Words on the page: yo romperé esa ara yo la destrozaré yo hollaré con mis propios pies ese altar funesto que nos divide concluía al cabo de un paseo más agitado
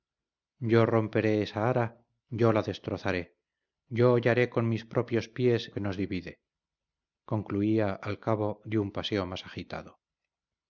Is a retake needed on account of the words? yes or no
yes